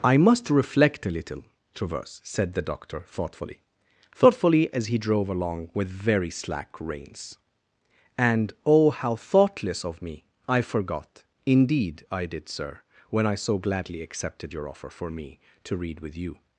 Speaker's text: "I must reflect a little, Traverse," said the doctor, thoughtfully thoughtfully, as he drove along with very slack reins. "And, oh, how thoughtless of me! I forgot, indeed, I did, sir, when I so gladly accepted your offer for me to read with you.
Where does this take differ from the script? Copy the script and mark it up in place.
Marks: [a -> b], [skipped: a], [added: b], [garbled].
"I must reflect a little, Traverse," said the doctor, thoughtfully thoughtfully, as he drove along with very slack reins. "And, oh, how thoughtless of me! I forgot, indeed, I did, sir, when I so gladly accepted your offer for me to read with you.